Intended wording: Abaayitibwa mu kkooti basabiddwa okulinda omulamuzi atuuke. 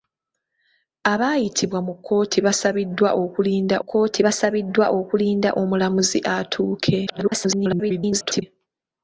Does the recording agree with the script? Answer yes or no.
no